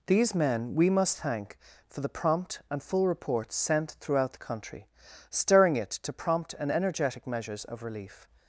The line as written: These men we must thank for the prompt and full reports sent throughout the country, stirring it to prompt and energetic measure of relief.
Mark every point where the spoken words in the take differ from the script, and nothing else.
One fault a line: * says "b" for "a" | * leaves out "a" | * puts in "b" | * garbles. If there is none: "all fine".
* says "measures" for "measure"